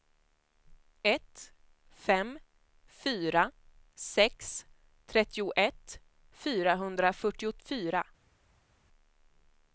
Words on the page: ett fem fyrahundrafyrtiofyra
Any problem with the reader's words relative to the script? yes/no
yes